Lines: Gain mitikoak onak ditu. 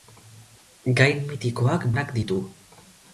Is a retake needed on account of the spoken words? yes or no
no